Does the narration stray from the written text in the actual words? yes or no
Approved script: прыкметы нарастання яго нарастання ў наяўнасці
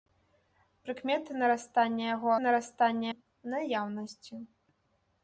no